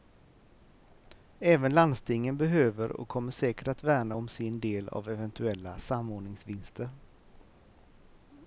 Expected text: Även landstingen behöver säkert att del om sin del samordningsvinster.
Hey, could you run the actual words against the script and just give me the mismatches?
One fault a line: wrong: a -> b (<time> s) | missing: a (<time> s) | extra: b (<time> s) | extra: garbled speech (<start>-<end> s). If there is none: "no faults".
extra: och kommer (2.9 s)
wrong: del -> värna (3.8 s)
extra: av eventuella (4.9 s)